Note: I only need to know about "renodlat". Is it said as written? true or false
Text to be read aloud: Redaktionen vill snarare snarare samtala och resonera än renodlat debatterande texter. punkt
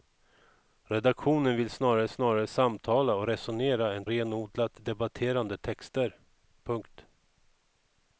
true